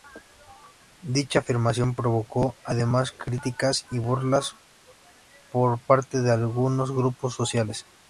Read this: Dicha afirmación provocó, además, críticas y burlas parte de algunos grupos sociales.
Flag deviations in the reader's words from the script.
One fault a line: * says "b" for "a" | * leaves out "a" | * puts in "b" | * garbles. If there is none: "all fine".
* puts in "por"